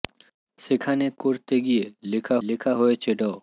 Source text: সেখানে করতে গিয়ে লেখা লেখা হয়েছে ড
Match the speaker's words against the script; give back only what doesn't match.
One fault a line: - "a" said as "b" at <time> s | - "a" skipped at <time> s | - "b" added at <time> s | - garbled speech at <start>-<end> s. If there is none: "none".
none